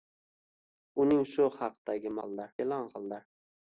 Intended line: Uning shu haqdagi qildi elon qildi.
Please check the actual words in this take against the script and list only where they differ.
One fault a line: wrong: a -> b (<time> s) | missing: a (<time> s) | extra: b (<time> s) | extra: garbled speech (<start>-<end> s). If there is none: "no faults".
no faults